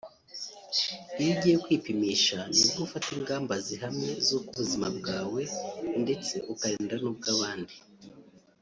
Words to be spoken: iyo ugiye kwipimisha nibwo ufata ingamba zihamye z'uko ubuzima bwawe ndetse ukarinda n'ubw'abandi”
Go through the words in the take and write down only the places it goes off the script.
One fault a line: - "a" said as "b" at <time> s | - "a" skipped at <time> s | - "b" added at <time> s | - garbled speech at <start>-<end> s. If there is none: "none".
none